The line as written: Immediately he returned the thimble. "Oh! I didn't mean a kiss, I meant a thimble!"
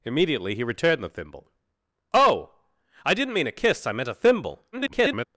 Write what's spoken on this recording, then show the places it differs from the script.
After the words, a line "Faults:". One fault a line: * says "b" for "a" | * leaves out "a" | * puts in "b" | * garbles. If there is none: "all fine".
Immediately he returned the thimble. "Oh! I didn't mean a kiss, I meant a thimble!" [garbled]
Faults:
* garbles